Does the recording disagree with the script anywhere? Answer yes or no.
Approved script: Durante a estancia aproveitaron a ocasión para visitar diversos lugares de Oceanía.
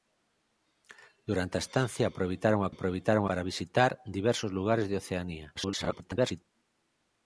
yes